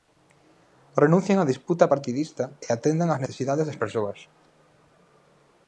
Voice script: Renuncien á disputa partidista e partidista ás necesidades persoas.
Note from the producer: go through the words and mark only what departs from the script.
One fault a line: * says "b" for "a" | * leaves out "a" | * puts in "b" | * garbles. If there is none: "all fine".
* says "atendan" for "partidista"
* puts in "das"